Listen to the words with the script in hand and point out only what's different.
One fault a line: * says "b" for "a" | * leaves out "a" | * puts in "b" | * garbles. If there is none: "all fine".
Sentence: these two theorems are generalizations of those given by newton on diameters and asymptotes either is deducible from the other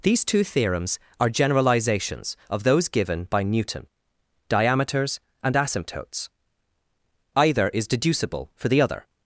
* leaves out "on"
* says "for" for "from"